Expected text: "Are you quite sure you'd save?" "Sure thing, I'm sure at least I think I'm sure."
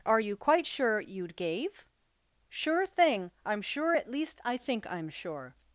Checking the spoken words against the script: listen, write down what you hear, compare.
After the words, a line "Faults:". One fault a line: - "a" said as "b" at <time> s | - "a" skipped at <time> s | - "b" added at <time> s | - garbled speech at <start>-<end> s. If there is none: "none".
"Are you quite sure you'd gave?" "Sure thing, I'm sure at least I think I'm sure."
Faults:
- "save" said as "gave" at 1.4 s